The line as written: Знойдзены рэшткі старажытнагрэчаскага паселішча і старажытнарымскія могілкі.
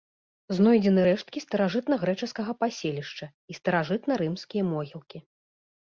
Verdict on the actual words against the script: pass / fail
pass